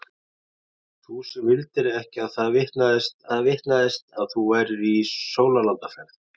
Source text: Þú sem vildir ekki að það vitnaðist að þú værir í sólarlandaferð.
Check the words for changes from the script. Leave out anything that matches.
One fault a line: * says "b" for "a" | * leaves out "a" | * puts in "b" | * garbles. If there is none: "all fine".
* puts in "það vitnaðist"